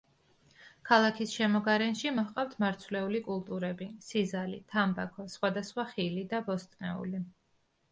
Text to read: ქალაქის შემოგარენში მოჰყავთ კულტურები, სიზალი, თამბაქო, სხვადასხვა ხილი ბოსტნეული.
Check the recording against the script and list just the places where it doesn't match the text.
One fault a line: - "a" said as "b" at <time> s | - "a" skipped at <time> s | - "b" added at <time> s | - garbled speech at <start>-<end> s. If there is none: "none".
- "მარცვლეული" added at 2.6 s
- "და" added at 6.4 s